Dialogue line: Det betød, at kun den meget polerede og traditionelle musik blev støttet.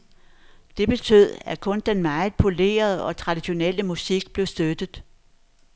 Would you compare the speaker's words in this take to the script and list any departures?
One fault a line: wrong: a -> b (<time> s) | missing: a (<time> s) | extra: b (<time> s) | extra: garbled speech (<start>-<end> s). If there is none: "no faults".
no faults